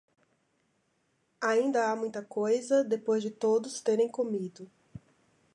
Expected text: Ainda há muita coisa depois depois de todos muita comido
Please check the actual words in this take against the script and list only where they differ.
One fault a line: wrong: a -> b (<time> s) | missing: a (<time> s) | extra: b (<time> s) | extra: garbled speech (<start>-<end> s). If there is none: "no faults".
missing: depois (3.2 s)
wrong: muita -> terem (3.8 s)